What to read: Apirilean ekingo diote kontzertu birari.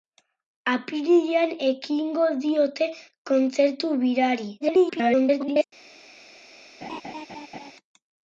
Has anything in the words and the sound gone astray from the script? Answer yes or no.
yes